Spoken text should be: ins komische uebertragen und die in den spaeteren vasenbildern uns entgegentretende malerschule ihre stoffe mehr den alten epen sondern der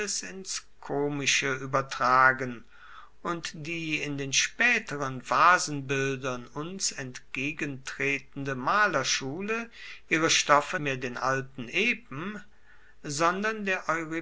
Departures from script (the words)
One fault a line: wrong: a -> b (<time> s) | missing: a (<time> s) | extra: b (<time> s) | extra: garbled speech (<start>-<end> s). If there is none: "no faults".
no faults